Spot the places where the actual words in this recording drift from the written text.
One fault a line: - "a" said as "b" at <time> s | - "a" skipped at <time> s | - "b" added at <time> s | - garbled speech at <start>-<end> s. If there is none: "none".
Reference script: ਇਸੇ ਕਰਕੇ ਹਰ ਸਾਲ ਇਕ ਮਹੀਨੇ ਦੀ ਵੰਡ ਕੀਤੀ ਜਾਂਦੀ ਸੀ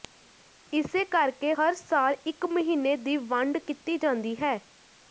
- "ਸੀ" said as "ਹੈ" at 4.4 s